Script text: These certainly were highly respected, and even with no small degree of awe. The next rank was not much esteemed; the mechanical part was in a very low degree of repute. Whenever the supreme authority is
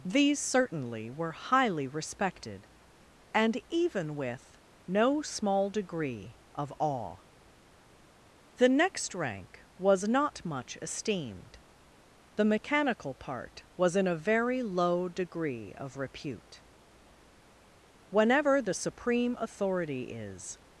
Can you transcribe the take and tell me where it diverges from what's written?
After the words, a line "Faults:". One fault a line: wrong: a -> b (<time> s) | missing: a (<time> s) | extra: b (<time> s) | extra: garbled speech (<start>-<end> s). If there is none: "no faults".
These certainly were highly respected, and even with no small degree of awe. The next rank was not much esteemed; the mechanical part was in a very low degree of repute. Whenever the supreme authority is
Faults:
no faults